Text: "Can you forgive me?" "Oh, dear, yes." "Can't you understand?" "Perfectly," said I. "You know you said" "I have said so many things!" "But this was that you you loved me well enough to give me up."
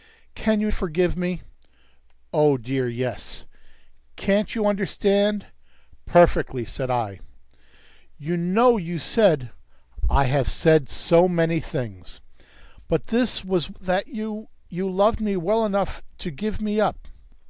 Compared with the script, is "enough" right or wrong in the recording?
right